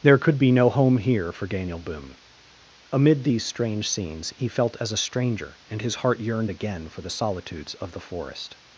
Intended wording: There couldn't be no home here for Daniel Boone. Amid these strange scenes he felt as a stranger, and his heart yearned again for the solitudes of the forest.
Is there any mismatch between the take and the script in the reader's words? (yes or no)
yes